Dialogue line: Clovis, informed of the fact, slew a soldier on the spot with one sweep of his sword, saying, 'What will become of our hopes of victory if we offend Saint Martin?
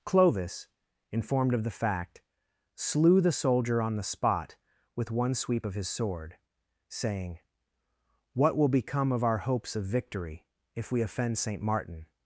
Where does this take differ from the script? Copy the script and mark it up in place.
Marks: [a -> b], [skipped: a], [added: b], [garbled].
Clovis, informed of the fact, slew [a -> the] soldier on the spot with one sweep of his sword, saying, 'What will become of our hopes of victory if we offend Saint Martin?